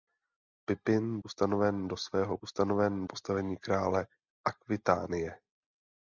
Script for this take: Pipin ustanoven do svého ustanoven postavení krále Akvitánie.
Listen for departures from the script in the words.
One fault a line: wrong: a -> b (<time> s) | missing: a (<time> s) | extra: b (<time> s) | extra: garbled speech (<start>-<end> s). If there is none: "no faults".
no faults